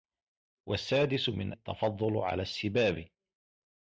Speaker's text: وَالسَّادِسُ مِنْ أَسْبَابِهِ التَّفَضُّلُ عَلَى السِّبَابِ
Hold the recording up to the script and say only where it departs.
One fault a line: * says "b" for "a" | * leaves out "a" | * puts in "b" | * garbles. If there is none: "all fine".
* leaves out "أَسْبَابِهِ"